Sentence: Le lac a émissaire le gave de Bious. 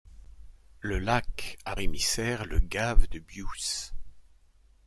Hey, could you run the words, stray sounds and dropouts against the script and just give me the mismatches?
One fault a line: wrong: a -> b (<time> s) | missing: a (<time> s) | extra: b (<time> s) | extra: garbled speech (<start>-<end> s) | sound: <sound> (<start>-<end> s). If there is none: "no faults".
no faults